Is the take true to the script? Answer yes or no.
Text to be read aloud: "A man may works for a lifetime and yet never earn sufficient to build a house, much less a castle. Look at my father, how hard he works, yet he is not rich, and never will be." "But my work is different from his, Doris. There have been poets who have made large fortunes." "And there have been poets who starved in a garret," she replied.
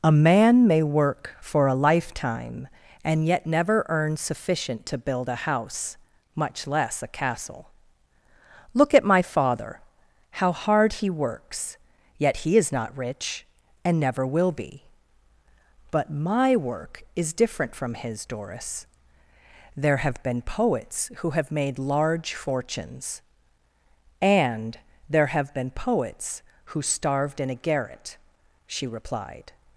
no